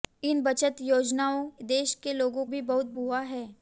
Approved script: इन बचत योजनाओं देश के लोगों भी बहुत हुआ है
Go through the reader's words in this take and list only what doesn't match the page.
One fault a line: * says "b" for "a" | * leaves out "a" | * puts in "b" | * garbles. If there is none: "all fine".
all fine